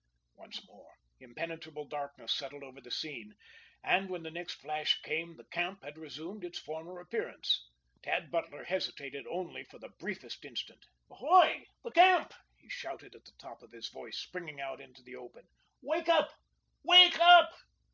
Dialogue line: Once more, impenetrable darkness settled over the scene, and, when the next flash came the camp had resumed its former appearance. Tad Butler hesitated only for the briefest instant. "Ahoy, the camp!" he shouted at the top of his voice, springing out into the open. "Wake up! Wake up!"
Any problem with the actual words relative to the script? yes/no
no